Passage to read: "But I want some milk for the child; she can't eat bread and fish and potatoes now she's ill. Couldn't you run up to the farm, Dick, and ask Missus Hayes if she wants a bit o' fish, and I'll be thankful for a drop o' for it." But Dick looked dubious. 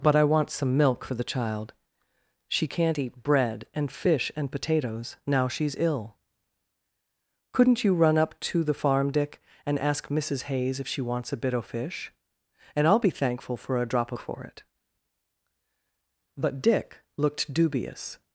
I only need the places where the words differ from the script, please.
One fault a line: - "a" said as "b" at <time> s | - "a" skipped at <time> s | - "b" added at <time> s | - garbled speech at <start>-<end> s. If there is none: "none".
none